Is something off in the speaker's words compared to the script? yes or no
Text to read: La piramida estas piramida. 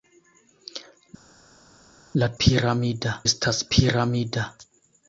no